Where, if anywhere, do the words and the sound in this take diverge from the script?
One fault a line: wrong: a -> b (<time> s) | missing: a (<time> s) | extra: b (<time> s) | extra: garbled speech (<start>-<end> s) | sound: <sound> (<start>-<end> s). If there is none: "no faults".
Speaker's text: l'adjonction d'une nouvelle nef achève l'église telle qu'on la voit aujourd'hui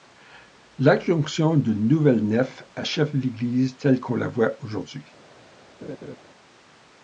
sound: laugh (5.8-6.2 s)